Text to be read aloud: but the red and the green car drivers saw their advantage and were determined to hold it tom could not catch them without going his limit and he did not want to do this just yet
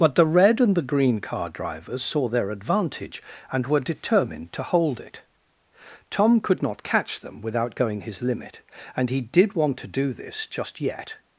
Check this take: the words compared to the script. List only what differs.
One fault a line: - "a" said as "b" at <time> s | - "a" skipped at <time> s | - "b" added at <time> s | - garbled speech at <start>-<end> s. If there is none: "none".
- "not" skipped at 9.5 s